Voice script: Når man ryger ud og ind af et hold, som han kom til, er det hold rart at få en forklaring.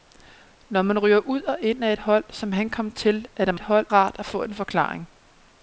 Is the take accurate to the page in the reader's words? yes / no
yes